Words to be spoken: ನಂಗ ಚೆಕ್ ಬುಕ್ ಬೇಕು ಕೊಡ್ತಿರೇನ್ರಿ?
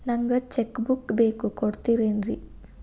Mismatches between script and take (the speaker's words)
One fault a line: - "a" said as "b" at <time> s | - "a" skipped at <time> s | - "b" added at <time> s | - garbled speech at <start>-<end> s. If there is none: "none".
none